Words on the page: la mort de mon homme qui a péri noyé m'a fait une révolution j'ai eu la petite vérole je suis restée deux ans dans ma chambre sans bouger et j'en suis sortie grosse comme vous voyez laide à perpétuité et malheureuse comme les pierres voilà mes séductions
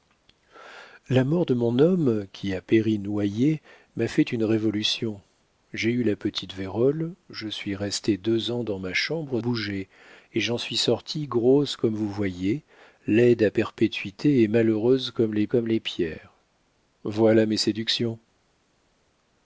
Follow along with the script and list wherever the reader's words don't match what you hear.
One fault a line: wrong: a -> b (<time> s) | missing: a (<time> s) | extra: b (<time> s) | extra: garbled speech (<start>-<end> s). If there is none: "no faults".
missing: sans (9.4 s)
extra: comme les (15.5 s)